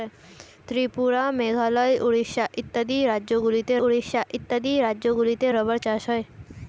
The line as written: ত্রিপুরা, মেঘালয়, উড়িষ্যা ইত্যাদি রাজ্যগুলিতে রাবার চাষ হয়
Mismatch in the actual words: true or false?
true